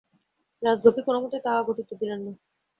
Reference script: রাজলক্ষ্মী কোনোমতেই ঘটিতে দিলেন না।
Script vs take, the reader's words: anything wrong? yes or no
yes